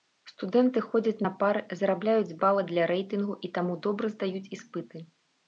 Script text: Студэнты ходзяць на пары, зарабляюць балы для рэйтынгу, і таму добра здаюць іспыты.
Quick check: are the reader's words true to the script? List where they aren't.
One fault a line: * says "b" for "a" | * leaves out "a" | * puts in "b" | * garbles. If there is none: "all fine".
all fine